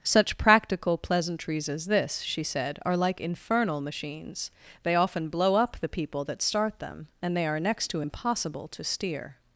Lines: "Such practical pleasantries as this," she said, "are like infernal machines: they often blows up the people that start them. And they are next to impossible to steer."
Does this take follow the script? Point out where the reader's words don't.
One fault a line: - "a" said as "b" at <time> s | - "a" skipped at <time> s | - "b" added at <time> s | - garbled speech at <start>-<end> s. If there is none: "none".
- "blows" said as "blow" at 5.3 s